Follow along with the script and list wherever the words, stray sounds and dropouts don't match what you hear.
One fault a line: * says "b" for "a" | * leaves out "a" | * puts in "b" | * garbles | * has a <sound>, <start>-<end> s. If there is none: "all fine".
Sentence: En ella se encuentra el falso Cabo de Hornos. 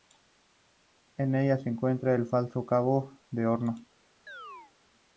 * has a chirp, 4.3-4.7 s